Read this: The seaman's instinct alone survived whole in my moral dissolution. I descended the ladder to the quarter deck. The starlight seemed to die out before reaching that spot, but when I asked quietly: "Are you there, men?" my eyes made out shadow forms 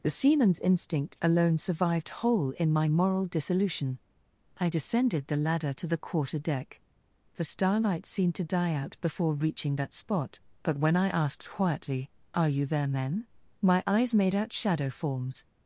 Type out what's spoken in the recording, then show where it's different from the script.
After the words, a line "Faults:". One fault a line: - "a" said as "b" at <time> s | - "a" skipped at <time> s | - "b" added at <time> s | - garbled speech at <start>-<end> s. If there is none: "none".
The seaman's instinct alone survived whole in my moral dissolution. I descended the ladder to the quarter deck. The starlight seemed to die out before reaching that spot, but when I asked quietly: "Are you there, men?" my eyes made out shadow forms
Faults:
none